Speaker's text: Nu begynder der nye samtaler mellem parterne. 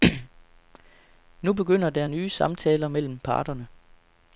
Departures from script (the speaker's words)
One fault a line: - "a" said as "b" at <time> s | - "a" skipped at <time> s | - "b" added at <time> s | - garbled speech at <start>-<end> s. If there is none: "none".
none